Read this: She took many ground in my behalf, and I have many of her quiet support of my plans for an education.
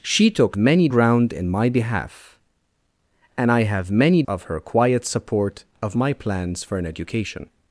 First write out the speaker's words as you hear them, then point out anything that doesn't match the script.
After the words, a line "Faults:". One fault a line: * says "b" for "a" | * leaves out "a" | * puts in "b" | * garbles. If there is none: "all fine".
She took many ground in my behalf, and I have many of her quiet support of my plans for an education.
Faults:
all fine